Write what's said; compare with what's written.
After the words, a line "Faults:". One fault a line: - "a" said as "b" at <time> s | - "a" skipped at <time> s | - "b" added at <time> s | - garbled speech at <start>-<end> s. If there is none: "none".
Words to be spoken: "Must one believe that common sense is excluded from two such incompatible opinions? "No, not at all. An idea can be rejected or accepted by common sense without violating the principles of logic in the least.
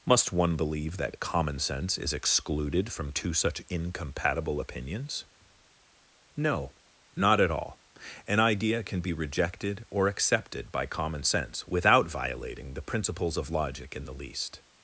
"Must one believe that common sense is excluded from two such incompatible opinions? "No, not at all. An idea can be rejected or accepted by common sense without violating the principles of logic in the least.
Faults:
none